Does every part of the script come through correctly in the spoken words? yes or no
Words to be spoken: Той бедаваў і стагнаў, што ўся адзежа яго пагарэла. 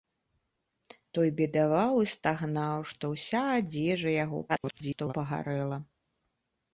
no